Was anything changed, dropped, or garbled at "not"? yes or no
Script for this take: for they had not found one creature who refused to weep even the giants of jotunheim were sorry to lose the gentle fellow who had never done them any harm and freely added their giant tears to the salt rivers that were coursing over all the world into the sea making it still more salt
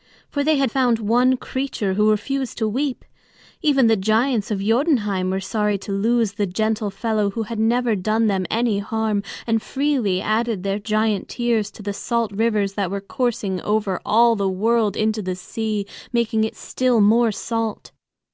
yes